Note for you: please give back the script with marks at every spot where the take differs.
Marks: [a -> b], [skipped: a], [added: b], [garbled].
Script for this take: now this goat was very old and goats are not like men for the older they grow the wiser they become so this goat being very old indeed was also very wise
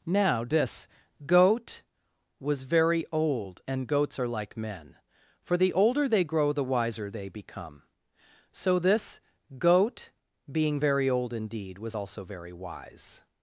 now this goat was very old and goats are [skipped: not] like men for the older they grow the wiser they become so this goat being very old indeed was also very wise